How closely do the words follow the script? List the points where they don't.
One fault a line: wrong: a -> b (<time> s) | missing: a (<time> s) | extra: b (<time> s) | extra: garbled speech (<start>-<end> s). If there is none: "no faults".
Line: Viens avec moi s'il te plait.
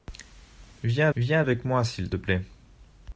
extra: viens (1.2 s)